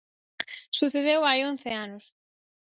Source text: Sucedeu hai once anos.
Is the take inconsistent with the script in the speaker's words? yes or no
no